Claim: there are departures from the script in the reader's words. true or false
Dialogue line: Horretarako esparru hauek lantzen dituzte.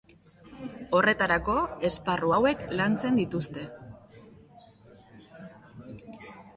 false